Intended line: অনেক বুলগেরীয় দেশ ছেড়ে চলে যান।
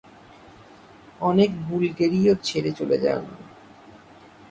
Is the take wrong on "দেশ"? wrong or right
wrong